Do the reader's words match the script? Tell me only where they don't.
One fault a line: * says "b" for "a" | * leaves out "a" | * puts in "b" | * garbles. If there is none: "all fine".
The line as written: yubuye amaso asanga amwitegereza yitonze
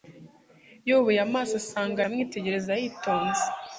all fine